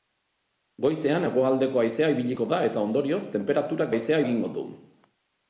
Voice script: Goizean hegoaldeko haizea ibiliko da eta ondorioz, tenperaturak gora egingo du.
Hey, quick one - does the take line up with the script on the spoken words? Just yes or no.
no